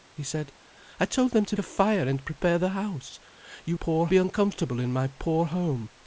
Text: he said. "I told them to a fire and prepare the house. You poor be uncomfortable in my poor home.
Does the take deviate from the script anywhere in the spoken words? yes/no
no